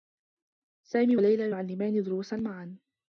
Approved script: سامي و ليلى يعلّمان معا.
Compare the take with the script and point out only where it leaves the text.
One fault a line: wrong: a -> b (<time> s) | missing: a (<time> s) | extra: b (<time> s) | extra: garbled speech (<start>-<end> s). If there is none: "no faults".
extra: دروسا (2.0 s)